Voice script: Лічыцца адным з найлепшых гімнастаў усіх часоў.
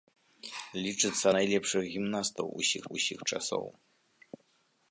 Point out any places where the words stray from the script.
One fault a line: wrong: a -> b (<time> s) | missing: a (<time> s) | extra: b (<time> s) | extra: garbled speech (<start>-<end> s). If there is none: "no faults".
missing: адным з (1.2 s)
extra: усіх (3.0 s)